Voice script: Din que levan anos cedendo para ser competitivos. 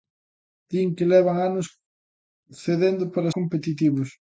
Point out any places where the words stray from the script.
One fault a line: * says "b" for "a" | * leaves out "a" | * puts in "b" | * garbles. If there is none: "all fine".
* leaves out "ser"